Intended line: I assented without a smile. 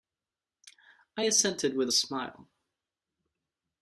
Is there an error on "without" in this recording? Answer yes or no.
yes